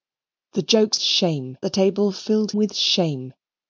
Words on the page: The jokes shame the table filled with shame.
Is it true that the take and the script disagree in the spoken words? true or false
false